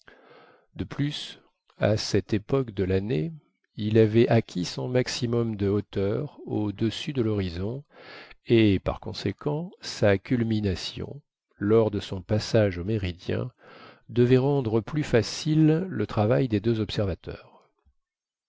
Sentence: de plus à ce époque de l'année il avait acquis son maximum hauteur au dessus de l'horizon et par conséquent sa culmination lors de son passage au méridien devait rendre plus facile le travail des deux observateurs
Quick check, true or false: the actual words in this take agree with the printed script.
false